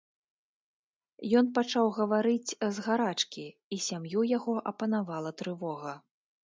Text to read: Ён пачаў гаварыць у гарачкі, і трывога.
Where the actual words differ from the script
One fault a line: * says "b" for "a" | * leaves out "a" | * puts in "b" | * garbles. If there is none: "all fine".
* says "з" for "у"
* puts in "сям'ю яго апанавала"